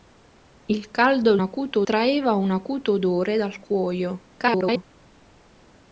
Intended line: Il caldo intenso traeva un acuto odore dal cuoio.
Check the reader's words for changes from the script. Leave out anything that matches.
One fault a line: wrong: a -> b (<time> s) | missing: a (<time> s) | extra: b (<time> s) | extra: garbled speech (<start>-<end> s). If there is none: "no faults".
wrong: intenso -> acuto (1.4 s)
extra: garbled speech (4.4-4.8 s)